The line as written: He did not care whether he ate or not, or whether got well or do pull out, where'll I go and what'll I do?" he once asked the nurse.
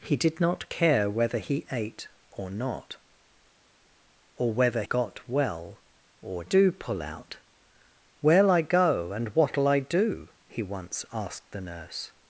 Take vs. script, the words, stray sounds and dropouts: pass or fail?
pass